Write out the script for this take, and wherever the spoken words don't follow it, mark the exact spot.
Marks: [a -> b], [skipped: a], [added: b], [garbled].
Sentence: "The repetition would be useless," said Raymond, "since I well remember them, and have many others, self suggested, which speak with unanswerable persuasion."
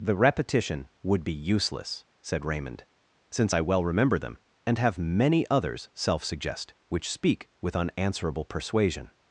"The repetition would be useless," said Raymond, "since I well remember them, and have many others, self [suggested, -> suggest] which speak with unanswerable persuasion."